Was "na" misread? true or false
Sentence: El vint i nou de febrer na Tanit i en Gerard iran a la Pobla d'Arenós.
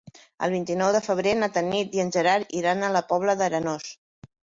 false